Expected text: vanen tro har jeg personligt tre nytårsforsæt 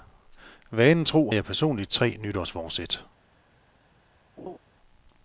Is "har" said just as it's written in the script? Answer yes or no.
no